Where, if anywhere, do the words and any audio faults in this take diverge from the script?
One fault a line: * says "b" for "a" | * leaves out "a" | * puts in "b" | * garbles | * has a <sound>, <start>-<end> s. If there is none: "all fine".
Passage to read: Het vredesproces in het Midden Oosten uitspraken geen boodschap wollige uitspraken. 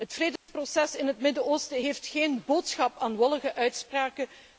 * has a dropout, 0.4-0.5 s
* says "heeft" for "uitspraken"
* puts in "aan"